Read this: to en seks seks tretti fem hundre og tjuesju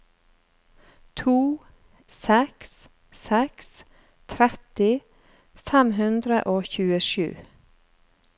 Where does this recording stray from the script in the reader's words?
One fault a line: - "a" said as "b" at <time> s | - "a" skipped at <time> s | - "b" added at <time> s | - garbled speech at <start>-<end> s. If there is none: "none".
- "en" skipped at 1.4 s